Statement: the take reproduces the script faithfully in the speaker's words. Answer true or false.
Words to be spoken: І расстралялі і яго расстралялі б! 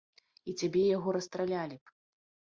false